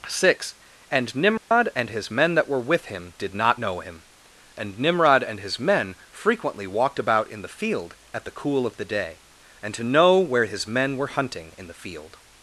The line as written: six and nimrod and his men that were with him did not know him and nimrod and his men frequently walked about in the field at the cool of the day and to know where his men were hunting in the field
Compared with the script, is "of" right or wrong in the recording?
right